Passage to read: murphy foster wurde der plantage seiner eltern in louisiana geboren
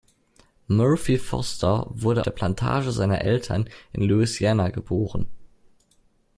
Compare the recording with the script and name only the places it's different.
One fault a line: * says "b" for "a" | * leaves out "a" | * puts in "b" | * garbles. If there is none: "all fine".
all fine